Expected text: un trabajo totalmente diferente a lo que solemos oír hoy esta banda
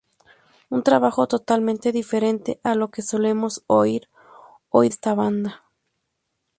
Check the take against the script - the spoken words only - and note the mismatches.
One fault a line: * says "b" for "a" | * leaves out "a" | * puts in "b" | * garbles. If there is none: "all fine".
all fine